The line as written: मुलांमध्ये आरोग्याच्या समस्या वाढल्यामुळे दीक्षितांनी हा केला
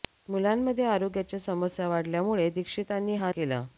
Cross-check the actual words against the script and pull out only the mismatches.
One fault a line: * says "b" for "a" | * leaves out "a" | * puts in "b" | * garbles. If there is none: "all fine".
all fine